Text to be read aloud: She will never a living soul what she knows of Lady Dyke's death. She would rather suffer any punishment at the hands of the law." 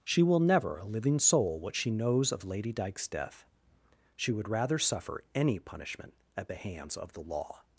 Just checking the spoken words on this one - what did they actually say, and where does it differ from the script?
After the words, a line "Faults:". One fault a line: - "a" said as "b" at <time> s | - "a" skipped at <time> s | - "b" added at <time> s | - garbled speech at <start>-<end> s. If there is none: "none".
She will never a living soul what she knows of Lady Dyke's death. She would rather suffer any punishment at the hands of the law."
Faults:
none